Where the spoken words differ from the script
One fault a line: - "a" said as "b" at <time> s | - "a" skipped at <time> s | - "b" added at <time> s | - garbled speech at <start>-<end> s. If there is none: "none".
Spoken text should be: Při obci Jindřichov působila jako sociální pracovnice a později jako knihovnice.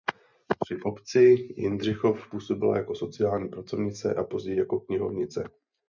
none